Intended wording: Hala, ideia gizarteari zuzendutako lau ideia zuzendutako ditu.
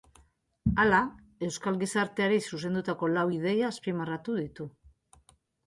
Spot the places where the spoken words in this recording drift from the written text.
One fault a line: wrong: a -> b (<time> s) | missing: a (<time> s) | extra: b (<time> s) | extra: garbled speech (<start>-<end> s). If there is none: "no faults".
wrong: ideia -> euskal (1.5 s)
wrong: zuzendutako -> azpimarratu (3.7 s)